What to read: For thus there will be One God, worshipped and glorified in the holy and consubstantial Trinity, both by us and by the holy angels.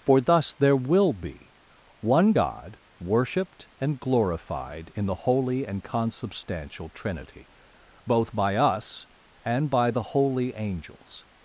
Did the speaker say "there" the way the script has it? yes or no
yes